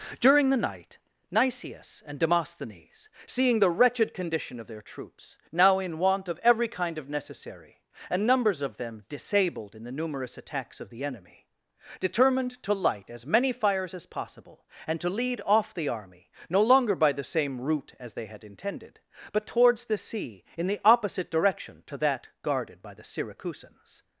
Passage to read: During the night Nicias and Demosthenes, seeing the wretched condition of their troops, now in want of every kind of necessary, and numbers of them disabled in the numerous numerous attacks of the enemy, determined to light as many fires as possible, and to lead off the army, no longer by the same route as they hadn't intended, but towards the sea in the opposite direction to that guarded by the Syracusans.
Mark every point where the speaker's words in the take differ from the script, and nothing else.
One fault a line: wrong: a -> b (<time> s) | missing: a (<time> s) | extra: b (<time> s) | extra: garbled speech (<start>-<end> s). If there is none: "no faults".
missing: numerous (10.4 s)
wrong: hadn't -> had (18.2 s)